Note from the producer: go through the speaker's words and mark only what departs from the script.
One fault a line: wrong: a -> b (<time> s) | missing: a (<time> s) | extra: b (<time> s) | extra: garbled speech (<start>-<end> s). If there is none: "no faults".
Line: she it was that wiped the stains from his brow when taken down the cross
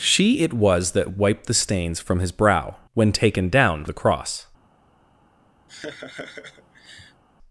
no faults